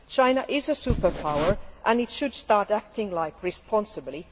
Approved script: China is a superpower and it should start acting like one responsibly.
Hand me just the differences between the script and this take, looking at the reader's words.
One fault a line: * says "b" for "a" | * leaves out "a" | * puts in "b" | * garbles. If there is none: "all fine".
* leaves out "one"